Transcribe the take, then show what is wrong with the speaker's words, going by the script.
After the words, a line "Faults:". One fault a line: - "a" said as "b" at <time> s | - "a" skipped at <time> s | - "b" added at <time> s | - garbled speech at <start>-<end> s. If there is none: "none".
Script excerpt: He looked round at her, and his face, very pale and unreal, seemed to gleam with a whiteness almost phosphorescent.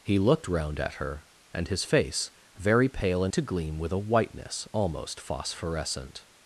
He looked round at her, and his face, very pale and to gleam with a whiteness almost phosphorescent.
Faults:
- "unreal seemed" skipped at 3.3 s